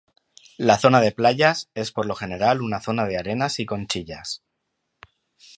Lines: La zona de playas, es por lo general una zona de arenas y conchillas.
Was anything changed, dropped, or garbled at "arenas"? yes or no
no